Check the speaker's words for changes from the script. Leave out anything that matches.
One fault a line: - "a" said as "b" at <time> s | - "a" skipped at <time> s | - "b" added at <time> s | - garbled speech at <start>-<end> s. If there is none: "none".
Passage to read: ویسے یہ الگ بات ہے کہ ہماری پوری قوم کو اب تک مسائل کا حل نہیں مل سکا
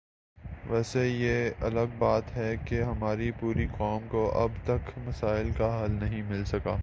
none